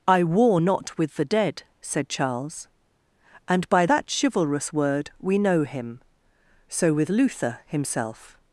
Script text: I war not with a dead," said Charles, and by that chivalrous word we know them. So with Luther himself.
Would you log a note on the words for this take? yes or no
yes